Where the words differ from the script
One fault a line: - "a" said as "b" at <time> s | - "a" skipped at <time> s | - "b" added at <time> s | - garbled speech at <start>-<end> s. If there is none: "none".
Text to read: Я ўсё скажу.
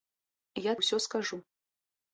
none